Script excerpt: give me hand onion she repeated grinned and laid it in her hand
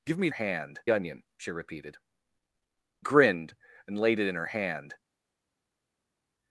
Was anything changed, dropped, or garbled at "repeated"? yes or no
no